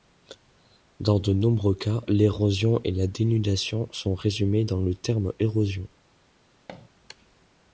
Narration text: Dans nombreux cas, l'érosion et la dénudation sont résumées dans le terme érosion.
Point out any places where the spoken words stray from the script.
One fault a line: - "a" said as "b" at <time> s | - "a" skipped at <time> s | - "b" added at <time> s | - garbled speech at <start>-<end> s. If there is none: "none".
- "de" added at 1.2 s